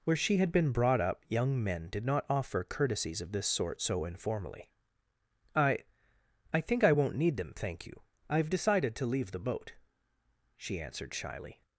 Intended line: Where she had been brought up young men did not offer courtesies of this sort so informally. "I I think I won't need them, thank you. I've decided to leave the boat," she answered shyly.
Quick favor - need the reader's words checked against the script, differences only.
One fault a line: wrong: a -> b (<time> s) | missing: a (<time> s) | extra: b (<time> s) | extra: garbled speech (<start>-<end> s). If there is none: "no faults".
no faults